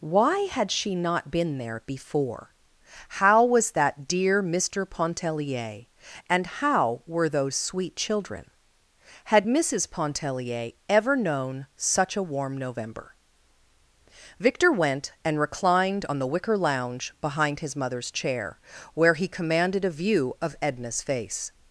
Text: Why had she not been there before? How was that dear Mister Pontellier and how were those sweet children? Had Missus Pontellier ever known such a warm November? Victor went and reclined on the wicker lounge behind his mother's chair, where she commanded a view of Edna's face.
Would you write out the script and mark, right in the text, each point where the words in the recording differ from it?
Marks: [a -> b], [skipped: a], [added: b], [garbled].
Why had she not been there before? How was that dear Mister Pontellier and how were those sweet children? Had Missus Pontellier ever known such a warm November? Victor went and reclined on the wicker lounge behind his mother's chair, where [she -> he] commanded a view of Edna's face.